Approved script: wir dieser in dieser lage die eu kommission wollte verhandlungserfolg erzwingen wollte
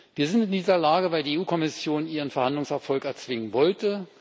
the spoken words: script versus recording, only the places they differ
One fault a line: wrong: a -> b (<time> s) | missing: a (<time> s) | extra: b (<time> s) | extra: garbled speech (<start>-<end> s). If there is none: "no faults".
wrong: dieser -> sind (0.3 s)
extra: weil (1.1 s)
wrong: wollte -> ihren (2.1 s)